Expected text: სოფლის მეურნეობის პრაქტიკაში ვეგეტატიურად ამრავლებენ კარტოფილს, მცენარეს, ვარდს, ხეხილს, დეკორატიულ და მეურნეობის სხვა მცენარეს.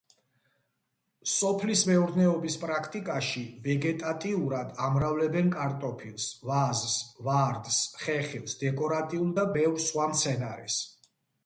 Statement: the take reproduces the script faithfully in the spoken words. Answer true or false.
false